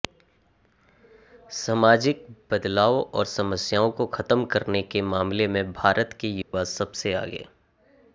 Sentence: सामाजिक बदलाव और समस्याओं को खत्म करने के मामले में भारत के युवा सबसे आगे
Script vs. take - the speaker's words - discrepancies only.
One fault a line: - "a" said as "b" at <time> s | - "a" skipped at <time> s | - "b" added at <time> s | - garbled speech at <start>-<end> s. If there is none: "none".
none